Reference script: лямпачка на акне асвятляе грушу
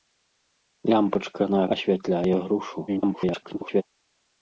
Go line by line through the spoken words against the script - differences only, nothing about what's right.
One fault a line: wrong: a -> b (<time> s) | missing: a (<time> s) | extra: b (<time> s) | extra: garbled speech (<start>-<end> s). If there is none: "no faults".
missing: акне (1.6 s)
extra: garbled speech (2.9-3.8 s)